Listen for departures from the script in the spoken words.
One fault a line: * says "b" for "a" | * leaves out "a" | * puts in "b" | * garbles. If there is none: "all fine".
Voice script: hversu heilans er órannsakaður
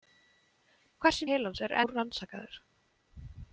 all fine